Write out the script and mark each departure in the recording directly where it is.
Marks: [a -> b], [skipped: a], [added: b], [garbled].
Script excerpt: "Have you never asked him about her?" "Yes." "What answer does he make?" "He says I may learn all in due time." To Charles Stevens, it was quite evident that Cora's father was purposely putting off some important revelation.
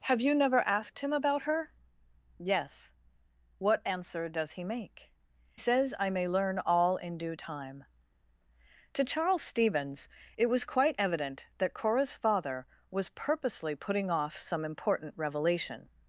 "Have you never asked him about her?" "Yes." "What answer does he make?" [skipped: "He] says I may learn all in due time." To Charles Stevens, it was quite evident that Cora's father was purposely putting off some important revelation.